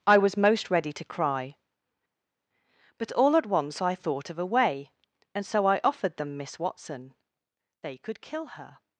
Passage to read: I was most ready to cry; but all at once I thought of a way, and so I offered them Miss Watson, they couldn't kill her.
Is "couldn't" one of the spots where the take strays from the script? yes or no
yes